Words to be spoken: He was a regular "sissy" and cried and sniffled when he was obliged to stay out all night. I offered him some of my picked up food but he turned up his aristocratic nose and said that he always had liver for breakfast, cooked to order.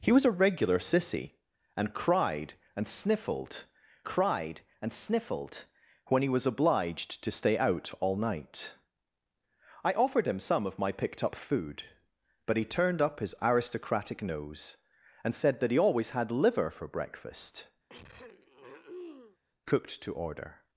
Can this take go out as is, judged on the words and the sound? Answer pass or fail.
fail